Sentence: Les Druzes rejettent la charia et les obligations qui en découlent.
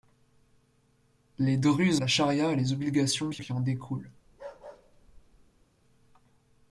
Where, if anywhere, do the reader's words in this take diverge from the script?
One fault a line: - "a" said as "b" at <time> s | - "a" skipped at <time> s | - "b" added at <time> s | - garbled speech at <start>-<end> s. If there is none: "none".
- "rejettent" skipped at 2.0 s
- "qui" added at 3.4 s